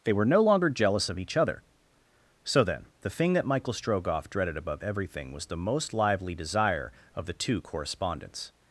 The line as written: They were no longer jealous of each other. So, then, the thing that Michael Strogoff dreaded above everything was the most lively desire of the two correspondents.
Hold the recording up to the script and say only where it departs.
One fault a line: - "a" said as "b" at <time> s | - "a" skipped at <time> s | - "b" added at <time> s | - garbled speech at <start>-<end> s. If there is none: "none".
none